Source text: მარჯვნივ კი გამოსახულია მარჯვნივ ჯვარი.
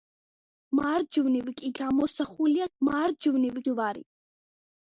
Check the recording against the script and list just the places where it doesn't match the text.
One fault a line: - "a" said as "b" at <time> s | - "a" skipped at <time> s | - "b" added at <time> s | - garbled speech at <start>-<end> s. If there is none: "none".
none